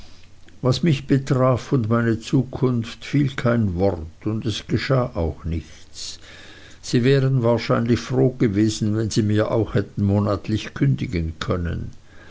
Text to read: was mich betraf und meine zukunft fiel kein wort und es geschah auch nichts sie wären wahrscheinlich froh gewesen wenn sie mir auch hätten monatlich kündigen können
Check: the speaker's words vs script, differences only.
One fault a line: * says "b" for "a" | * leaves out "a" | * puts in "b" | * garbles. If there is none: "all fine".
all fine